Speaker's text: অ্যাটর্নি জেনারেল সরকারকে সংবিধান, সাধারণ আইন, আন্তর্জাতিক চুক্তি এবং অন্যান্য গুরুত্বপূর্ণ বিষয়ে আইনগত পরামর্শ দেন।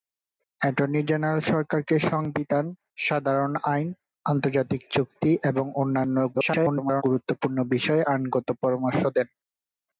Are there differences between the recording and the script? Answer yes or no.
yes